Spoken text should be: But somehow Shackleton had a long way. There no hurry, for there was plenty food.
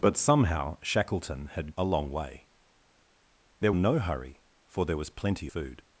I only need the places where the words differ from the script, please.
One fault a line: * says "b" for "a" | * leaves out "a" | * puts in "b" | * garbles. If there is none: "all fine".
all fine